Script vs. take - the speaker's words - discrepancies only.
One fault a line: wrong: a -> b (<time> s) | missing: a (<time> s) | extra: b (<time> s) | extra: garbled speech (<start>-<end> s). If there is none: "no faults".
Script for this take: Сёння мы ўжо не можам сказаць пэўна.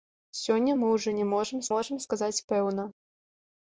extra: можам (1.7 s)